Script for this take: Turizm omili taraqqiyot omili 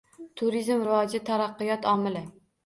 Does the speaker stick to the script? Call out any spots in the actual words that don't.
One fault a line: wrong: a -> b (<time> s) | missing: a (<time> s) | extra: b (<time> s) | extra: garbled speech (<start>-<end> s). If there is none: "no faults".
wrong: omili -> rivoji (0.9 s)